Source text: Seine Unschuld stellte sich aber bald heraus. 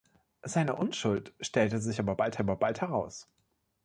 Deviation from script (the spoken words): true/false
true